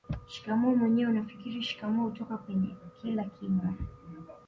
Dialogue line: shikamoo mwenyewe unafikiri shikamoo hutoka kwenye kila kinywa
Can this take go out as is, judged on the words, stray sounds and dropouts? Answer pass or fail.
pass